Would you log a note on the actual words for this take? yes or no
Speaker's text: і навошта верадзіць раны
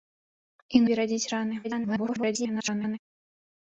yes